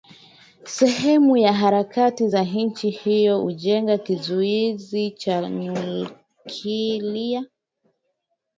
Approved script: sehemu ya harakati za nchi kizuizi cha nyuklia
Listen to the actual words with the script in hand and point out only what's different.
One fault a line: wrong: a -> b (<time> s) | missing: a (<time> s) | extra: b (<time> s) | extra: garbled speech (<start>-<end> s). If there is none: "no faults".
extra: hiyo kujenga (2.9 s)